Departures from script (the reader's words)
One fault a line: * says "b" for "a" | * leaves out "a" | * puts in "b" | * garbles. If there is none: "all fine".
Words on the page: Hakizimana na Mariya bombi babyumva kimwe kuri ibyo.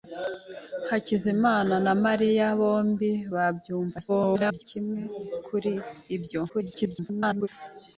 * garbles
* garbles